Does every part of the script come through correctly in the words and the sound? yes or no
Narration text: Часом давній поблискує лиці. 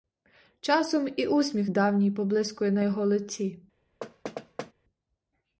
no